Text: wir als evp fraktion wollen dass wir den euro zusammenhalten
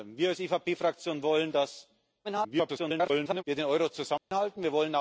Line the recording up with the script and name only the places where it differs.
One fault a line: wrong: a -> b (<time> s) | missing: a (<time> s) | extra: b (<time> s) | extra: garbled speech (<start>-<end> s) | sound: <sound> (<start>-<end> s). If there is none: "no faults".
extra: garbled speech (2.2-3.4 s)
sound: dropout (4.2-4.3 s)